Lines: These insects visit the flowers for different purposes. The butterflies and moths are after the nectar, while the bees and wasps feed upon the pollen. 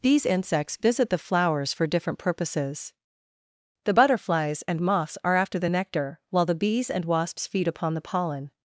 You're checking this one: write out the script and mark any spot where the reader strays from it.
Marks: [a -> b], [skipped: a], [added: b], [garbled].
These insects visit the flowers for different purposes. The butterflies and moths are after the nectar, while the bees and wasps feed upon the pollen.